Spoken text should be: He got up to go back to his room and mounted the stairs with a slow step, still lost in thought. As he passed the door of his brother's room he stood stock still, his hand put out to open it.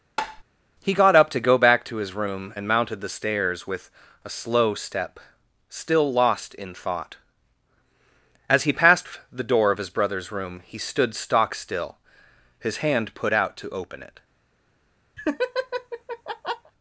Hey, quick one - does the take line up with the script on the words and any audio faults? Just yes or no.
no